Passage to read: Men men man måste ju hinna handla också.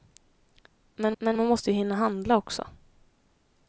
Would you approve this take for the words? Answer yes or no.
yes